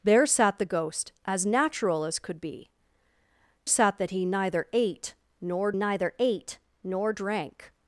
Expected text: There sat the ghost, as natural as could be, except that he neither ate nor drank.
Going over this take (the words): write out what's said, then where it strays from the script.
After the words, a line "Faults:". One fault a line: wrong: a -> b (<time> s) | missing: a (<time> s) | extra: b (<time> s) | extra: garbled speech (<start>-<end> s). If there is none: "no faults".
There sat the ghost, as natural as could be, sat that he neither ate nor neither ate nor drank.
Faults:
wrong: except -> sat (3.6 s)
extra: neither ate nor (5.7 s)